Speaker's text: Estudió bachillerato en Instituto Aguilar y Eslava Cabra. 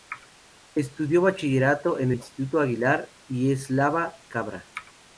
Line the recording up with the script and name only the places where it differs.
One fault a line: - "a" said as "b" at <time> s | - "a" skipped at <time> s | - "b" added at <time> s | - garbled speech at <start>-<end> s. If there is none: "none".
none